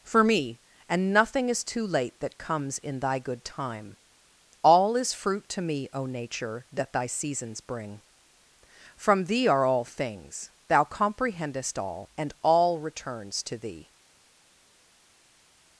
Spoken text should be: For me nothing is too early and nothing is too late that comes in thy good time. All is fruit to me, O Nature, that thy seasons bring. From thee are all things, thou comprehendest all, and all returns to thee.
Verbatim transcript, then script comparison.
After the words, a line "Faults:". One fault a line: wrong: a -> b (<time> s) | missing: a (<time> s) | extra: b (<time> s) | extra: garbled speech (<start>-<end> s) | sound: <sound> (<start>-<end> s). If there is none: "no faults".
For me and nothing is too late that comes in thy good time. All is fruit to me, O Nature, that thy seasons bring. From thee are all things, thou comprehendest all, and all returns to thee.
Faults:
missing: nothing is too early (0.6 s)